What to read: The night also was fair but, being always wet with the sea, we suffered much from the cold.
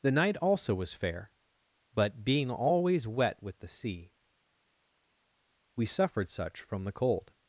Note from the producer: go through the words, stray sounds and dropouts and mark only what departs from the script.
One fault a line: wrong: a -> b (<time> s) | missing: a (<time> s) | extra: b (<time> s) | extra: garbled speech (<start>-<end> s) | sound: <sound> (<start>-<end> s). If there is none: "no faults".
wrong: much -> such (6.3 s)